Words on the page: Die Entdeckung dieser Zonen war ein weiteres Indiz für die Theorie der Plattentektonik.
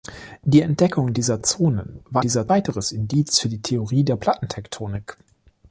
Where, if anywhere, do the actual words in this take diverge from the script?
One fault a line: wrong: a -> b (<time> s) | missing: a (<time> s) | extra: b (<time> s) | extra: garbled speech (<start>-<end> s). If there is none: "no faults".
wrong: ein -> dieser (2.2 s)